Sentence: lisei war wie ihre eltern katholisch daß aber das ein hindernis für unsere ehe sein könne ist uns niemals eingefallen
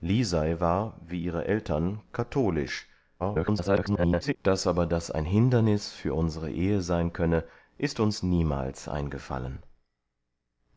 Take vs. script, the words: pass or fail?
fail